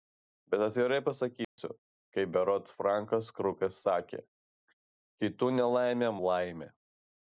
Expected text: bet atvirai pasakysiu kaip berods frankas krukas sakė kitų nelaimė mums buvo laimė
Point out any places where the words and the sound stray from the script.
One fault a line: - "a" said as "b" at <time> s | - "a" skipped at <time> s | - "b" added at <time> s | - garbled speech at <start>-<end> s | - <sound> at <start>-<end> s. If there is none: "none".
- dropout at 1.4-1.6 s
- "mums buvo" skipped at 6.1 s